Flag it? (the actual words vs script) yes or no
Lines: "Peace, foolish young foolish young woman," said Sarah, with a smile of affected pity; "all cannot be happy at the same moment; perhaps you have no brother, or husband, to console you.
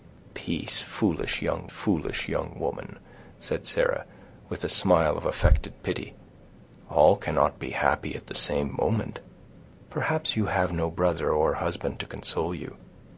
no